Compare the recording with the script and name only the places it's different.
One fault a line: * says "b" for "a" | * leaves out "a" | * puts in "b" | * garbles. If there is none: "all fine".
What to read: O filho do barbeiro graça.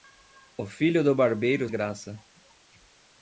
all fine